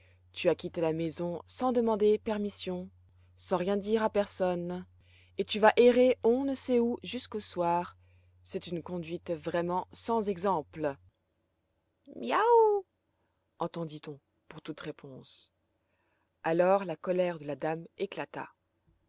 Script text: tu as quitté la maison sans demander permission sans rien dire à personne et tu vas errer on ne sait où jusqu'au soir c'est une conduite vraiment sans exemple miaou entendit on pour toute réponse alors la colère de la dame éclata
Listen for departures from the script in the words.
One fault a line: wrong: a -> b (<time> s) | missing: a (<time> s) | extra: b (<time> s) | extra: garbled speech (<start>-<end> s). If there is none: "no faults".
no faults